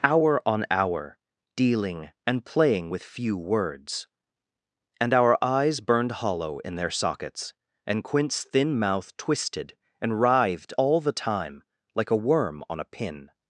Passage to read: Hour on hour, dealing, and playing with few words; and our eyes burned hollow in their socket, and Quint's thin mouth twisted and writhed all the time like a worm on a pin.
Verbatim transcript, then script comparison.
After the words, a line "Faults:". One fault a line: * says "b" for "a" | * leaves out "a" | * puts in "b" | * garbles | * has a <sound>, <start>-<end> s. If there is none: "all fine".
Hour on hour, dealing, and playing with few words; and our eyes burned hollow in their sockets, and Quint's thin mouth twisted and writhed all the time like a worm on a pin.
Faults:
* says "sockets" for "socket"